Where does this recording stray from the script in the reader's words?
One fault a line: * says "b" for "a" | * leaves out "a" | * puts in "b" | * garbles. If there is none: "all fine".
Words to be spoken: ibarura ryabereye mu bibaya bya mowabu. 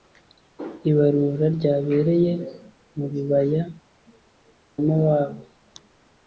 * leaves out "bya"